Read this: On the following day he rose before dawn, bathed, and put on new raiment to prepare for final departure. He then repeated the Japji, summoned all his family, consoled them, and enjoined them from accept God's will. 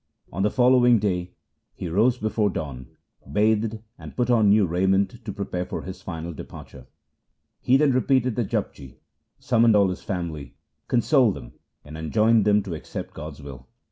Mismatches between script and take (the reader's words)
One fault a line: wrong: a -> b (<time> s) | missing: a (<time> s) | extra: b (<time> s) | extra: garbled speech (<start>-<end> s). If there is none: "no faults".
extra: his (5.8 s)
wrong: from -> to (12.6 s)